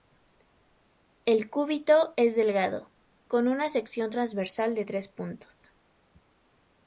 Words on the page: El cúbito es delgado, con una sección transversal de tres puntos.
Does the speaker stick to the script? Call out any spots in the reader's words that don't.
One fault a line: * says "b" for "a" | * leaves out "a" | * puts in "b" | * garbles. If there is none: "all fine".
all fine